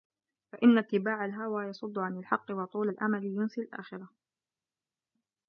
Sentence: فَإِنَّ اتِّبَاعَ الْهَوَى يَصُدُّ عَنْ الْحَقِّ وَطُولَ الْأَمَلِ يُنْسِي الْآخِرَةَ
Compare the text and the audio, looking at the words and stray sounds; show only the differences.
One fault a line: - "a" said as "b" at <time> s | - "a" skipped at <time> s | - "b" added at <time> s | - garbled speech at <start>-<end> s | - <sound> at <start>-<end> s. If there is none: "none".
none